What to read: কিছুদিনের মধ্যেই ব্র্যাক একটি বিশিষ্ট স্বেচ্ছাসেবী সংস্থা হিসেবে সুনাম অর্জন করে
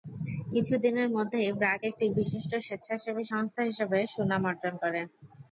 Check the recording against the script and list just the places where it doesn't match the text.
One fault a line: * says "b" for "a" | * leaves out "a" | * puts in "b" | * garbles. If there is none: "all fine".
all fine